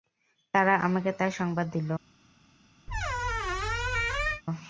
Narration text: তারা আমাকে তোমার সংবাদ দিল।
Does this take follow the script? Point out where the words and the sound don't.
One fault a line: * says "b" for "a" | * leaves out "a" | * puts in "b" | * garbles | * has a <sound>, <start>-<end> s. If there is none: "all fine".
* says "তার" for "তোমার"
* has a squeak, 2.9-4.4 s